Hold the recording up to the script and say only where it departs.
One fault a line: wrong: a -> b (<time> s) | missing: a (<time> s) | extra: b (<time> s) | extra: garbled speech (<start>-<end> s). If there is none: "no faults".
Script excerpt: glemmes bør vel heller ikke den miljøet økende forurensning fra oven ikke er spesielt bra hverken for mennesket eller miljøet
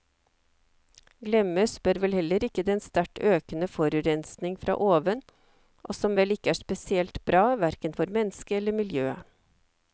wrong: miljøet -> sterkt (2.8 s)
extra: og som vel (5.8 s)